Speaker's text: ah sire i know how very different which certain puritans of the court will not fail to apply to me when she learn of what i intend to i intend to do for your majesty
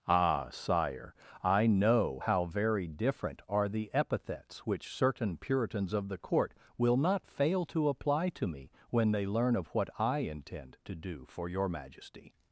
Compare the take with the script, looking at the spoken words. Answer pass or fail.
fail